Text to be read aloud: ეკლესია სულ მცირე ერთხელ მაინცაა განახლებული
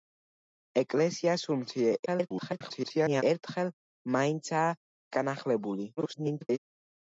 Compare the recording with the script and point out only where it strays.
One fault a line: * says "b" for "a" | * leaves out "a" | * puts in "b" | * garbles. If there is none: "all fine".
* garbles
* garbles